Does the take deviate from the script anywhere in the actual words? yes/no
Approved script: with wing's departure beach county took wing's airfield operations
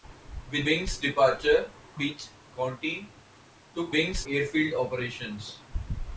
no